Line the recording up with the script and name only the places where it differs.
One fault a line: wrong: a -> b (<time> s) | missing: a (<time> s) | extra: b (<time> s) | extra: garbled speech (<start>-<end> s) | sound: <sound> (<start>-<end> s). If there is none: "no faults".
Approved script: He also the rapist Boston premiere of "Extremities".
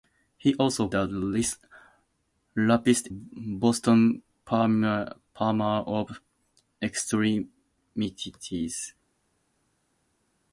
no faults